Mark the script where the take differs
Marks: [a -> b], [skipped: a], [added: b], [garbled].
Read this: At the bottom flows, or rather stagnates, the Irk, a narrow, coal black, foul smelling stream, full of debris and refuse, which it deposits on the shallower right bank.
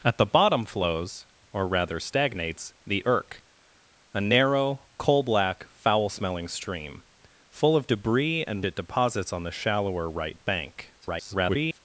At the bottom flows, or rather stagnates, the Irk, a narrow, coal black, foul smelling stream, full of debris and [skipped: refuse, which] it deposits on the shallower right bank. [garbled]